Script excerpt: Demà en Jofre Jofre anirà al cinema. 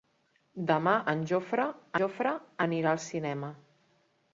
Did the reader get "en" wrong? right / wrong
right